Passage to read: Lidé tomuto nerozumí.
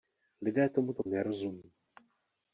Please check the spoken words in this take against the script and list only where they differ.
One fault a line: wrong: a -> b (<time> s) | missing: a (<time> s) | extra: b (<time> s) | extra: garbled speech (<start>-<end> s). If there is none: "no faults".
no faults